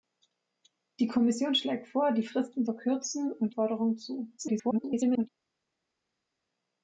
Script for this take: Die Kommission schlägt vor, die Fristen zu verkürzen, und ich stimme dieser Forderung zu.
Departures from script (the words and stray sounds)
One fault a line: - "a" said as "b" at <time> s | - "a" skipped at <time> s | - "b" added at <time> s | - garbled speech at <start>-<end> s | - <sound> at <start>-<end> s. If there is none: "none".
- "zu" skipped at 2.6 s
- "ich stimme dieser" skipped at 3.5 s
- garbled speech at 4.4-5.3 s